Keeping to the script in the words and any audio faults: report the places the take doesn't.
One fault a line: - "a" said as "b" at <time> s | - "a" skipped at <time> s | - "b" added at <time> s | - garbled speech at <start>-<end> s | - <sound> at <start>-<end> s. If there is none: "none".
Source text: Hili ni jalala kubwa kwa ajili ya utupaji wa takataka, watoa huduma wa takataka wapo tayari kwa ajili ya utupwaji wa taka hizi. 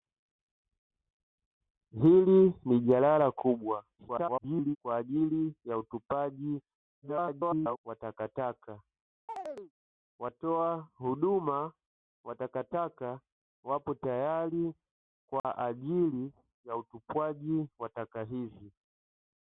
- garbled speech at 4.0-4.8 s
- garbled speech at 7.0-7.8 s
- chirp at 9.3-9.7 s
- dropout at 15.4-15.4 s